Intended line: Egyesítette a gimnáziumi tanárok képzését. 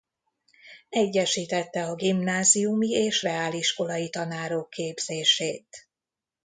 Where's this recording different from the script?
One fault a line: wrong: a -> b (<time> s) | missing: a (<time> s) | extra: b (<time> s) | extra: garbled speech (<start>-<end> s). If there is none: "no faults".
extra: és reáliskolai (2.9 s)